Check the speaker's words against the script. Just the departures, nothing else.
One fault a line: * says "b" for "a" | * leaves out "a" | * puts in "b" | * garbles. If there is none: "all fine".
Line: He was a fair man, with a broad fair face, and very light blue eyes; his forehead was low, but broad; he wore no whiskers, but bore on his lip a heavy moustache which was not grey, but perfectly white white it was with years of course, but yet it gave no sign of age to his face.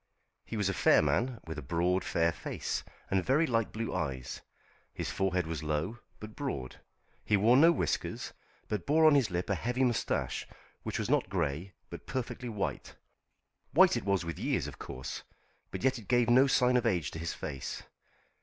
all fine